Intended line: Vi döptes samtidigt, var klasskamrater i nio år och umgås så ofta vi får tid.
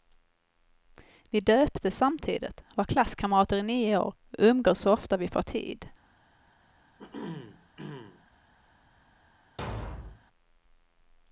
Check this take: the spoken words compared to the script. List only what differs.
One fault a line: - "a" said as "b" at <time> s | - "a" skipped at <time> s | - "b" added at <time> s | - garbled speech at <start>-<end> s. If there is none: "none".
none